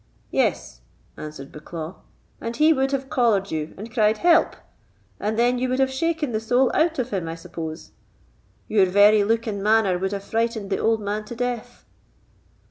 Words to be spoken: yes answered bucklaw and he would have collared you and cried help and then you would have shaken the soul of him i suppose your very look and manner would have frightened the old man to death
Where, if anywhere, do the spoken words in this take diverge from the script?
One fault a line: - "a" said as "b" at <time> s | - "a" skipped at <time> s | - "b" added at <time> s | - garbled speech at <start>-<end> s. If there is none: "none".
- "out" added at 6.7 s